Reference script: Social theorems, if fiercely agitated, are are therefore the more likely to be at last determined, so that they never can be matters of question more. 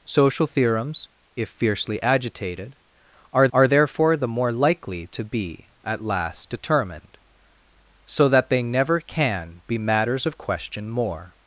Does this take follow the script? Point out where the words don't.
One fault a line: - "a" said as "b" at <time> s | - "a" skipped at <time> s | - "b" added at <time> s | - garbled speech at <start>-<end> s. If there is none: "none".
none